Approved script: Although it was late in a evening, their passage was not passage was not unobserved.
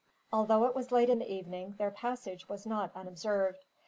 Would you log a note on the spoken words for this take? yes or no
yes